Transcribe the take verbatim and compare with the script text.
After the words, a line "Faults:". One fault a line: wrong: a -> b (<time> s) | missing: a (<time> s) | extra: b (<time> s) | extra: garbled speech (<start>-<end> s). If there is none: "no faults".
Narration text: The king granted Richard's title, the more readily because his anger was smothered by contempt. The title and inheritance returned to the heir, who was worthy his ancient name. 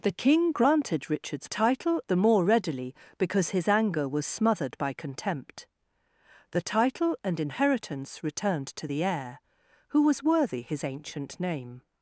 The king granted Richard's title, the more readily because his anger was smothered by contempt. The title and inheritance returned to the heir, who was worthy his ancient name.
Faults:
no faults